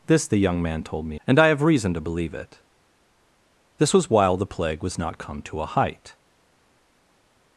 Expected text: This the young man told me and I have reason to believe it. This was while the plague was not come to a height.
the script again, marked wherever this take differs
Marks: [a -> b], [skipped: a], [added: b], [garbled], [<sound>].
This the young man told me and I have reason to believe it. This was while the plague was not come to a height.